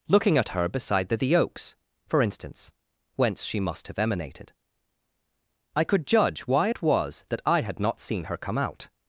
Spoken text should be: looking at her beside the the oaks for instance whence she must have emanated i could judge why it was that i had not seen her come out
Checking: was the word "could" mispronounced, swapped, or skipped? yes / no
no